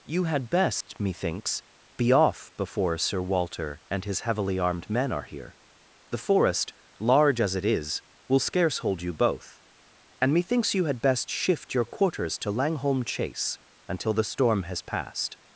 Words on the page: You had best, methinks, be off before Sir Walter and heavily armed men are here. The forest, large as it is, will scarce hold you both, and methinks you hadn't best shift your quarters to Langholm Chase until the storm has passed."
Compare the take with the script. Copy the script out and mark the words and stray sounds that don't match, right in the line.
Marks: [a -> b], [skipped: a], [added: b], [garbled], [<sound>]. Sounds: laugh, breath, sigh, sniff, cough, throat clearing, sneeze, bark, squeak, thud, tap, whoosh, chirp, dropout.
You had best, [dropout] methinks, be off before Sir Walter and [added: his] heavily armed men are here. The forest, large as it is, will scarce hold you both, and methinks you [hadn't -> had] best shift your quarters to Langholm Chase until the storm has passed."